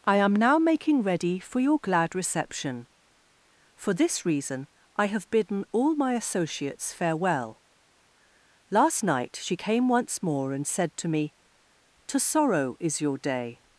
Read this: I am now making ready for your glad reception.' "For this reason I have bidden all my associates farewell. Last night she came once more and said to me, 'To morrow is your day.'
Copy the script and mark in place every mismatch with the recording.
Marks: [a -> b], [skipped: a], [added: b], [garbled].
I am now making ready for your glad reception.' "For this reason I have bidden all my associates farewell. Last night she came once more and said to me, 'To [morrow -> sorrow] is your day.'